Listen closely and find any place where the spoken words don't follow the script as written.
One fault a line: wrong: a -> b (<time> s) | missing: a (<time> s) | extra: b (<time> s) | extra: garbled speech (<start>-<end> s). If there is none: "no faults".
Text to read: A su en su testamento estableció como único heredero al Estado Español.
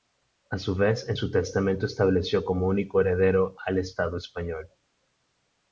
extra: vez (0.7 s)